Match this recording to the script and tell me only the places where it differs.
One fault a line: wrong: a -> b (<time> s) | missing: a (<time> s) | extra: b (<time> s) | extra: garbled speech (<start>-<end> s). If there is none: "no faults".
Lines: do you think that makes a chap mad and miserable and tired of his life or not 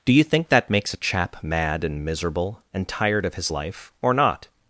no faults